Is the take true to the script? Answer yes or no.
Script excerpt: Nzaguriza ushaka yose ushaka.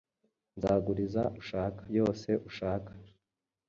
yes